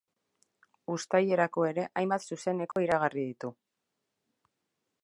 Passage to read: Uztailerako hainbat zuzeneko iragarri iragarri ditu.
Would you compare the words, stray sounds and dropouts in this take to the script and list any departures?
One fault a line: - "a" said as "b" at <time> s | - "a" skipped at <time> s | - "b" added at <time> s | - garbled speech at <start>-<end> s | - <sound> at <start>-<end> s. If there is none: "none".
- "ere" added at 1.7 s
- dropout at 2.7-2.8 s
- "iragarri" skipped at 3.3 s